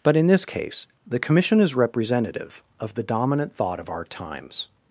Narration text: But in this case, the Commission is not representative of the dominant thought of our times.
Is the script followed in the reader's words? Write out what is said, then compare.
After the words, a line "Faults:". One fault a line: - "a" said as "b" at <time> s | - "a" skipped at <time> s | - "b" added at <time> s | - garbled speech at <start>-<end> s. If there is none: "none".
But in this case, the Commission is representative of the dominant thought of our times.
Faults:
- "not" skipped at 1.7 s